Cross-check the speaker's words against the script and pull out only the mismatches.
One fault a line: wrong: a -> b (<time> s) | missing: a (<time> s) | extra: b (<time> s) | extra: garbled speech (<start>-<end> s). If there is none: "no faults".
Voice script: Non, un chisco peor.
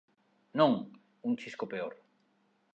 no faults